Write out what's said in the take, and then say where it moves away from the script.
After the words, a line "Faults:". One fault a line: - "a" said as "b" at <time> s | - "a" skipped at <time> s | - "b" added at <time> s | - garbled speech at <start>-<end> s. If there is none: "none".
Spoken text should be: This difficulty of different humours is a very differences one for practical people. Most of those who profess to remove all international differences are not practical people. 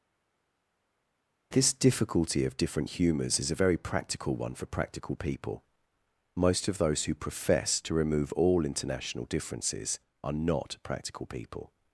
This difficulty of different humours is a very practical one for practical people. Most of those who profess to remove all international differences are not practical people.
Faults:
- "differences" said as "practical" at 3.8 s